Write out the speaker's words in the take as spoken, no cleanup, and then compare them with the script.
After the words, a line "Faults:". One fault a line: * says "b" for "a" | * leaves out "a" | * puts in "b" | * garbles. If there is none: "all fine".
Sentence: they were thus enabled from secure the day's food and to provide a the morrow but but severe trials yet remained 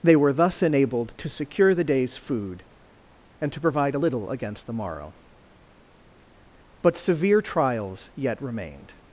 they were thus enabled to secure the day's food and to provide a little against the morrow but severe trials yet remained
Faults:
* says "to" for "from"
* puts in "little against"
* leaves out "but"